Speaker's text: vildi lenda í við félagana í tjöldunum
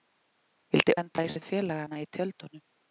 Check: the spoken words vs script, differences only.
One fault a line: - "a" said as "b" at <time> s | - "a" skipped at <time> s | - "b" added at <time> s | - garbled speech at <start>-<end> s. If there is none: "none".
none